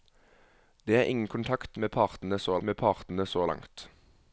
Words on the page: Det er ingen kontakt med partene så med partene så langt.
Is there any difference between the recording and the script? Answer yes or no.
no